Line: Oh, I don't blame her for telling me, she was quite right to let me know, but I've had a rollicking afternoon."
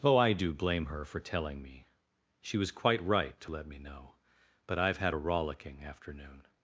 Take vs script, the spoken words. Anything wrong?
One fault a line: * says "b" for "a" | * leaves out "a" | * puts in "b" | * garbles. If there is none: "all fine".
* says "do" for "don't"